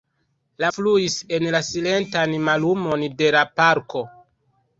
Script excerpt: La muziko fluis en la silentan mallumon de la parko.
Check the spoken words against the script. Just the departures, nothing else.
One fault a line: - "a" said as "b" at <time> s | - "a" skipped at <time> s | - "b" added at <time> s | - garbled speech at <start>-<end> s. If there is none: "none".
- "muziko" skipped at 0.7 s